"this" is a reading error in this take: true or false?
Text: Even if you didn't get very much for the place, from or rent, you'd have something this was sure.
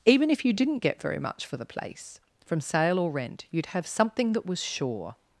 true